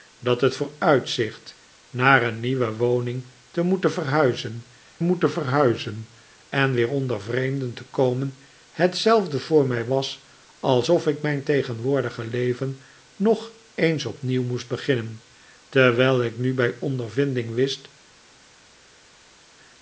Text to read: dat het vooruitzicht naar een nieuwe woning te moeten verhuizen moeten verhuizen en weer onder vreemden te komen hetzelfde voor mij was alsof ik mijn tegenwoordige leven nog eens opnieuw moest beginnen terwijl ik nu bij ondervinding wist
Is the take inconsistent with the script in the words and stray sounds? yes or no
no